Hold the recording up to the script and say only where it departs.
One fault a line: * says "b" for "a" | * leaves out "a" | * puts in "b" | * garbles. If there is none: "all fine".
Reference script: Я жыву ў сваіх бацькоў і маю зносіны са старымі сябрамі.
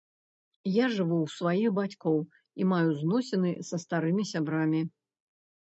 all fine